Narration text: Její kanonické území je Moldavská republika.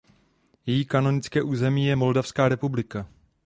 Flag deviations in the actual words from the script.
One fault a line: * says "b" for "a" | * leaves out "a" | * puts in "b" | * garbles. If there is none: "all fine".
all fine